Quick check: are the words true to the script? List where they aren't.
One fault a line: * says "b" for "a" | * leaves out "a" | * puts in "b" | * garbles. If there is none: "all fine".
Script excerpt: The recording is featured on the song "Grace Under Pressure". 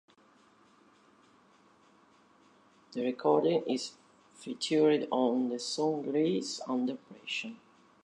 all fine